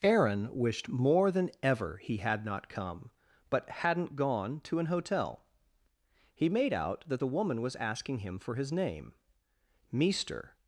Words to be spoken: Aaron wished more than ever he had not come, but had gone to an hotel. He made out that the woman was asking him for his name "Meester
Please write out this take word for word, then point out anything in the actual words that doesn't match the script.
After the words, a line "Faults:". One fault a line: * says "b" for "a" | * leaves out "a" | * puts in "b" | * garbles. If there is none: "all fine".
Aaron wished more than ever he had not come, but hadn't gone to an hotel. He made out that the woman was asking him for his name "Meester
Faults:
* says "hadn't" for "had"